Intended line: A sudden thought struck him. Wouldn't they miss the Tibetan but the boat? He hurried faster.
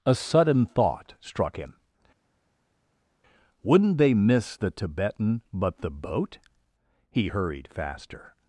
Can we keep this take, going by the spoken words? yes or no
yes